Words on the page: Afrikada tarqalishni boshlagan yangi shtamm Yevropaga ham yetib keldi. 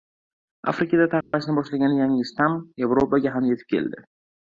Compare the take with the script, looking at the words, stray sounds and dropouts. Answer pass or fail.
fail